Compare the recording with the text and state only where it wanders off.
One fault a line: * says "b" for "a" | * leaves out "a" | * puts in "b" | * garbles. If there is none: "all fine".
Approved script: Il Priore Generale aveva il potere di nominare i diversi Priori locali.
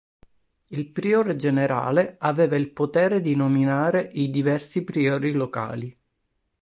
all fine